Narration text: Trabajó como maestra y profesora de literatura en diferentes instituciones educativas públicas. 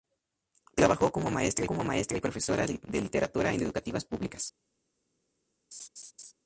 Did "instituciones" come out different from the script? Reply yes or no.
yes